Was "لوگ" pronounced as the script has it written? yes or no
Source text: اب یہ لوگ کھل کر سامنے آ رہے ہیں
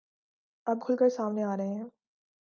no